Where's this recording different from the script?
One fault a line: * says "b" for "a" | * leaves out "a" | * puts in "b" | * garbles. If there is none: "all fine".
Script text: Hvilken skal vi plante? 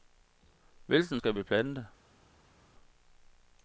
all fine